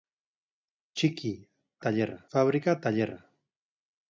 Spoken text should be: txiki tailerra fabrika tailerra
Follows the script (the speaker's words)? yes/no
yes